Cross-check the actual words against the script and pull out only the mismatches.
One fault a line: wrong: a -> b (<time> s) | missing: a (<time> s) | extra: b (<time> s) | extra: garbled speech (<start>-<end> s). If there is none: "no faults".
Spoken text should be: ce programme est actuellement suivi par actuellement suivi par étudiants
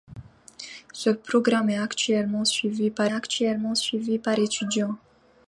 no faults